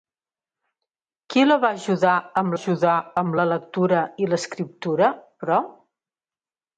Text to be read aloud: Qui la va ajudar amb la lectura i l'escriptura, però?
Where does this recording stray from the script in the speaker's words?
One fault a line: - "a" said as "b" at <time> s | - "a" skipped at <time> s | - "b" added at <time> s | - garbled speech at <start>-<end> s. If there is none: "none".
- "ajudar amb" added at 2.6 s